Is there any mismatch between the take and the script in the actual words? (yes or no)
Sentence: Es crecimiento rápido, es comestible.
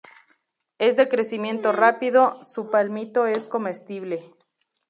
yes